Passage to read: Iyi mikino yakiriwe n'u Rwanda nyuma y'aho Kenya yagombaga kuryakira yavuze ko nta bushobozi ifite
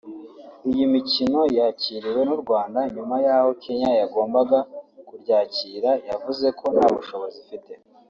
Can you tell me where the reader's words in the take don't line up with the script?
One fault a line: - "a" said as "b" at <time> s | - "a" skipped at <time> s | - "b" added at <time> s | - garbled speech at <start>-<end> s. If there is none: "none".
none